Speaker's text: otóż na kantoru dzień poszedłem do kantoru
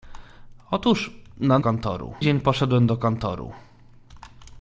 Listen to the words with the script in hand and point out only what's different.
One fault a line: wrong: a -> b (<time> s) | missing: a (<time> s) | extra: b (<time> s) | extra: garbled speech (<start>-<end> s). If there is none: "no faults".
no faults